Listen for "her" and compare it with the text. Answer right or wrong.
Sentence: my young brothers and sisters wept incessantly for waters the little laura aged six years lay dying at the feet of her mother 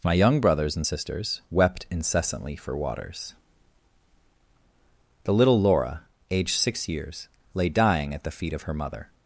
right